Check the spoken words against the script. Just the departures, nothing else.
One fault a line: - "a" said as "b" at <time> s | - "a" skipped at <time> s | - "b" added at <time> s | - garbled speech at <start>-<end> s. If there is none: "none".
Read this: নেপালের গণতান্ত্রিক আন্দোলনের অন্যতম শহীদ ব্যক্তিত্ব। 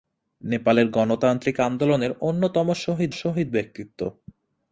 - "শহীদ" added at 3.1 s